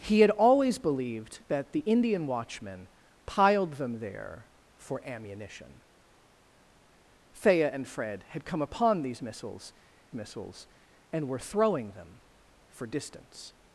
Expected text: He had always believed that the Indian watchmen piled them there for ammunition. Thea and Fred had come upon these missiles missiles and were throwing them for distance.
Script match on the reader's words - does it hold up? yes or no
yes